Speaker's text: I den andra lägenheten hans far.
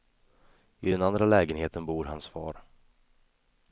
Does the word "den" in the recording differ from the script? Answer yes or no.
no